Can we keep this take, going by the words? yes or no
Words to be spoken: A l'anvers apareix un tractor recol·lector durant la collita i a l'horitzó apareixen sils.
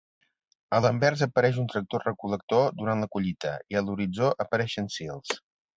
yes